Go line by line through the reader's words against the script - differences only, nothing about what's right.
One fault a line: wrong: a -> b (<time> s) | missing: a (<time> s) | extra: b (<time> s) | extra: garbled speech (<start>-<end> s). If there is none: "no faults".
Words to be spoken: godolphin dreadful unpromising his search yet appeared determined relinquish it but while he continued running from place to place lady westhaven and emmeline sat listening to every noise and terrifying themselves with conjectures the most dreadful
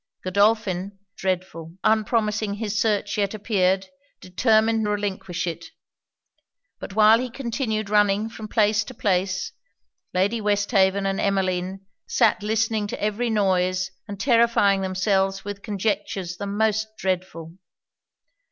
no faults